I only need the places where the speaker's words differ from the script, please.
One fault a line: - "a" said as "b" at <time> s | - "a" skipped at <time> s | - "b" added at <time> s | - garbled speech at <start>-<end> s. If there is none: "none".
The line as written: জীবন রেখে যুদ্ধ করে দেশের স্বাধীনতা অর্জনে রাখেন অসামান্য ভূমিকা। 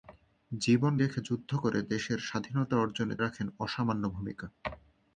none